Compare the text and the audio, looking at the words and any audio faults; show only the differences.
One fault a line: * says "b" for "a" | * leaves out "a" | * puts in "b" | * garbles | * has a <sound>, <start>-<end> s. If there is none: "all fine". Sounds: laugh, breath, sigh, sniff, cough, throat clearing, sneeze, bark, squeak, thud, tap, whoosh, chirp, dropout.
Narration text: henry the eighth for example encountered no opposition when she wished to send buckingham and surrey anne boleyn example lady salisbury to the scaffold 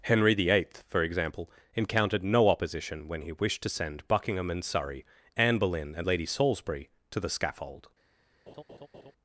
* says "he" for "she"
* says "and" for "example"
* has a laugh, 8.5-9.1 s